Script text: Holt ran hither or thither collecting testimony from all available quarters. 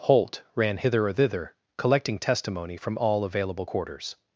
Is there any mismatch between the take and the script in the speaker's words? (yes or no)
no